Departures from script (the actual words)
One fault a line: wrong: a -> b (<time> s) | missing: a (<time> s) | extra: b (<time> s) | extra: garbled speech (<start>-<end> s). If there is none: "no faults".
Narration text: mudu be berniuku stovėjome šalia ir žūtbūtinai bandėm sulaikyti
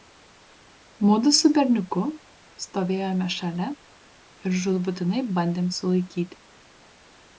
wrong: be -> su (1.4 s)